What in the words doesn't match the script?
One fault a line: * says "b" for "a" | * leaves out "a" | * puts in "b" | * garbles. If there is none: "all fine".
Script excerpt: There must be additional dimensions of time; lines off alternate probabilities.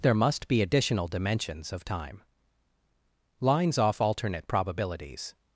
all fine